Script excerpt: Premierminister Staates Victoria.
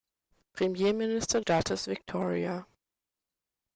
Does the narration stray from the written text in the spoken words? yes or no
no